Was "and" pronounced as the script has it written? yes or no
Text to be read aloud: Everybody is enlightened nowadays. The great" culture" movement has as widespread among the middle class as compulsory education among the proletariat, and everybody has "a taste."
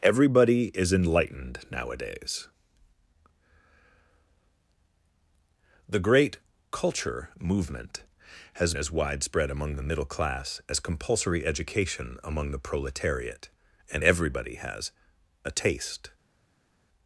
yes